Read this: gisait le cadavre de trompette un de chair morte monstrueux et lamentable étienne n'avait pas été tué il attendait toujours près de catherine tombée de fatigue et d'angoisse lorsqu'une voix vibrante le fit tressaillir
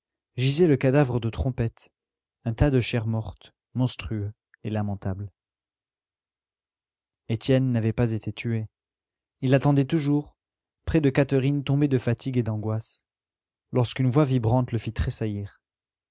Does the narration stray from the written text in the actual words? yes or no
yes